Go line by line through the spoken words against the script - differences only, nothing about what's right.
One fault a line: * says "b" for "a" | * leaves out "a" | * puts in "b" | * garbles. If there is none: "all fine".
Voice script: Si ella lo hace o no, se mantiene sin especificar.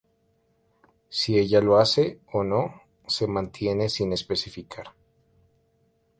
all fine